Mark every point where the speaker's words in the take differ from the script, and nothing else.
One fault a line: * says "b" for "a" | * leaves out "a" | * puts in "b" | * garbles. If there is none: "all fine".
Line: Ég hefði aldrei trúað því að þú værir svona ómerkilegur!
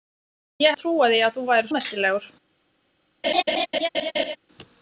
* leaves out "hefði aldrei"
* leaves out "svona"